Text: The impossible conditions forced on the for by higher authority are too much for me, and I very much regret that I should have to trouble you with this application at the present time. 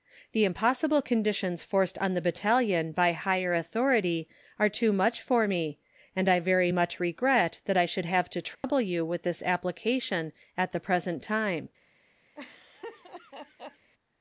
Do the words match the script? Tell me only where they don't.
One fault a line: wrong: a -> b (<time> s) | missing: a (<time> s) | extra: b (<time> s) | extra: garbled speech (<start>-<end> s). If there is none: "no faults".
wrong: for -> battalion (2.2 s)